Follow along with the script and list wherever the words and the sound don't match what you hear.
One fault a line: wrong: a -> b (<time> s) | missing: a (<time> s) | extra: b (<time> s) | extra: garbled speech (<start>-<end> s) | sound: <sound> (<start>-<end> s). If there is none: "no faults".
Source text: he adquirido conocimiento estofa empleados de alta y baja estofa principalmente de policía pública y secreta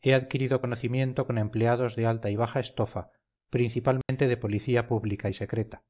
wrong: estofa -> con (1.3 s)
sound: dropout (4.0-4.1 s)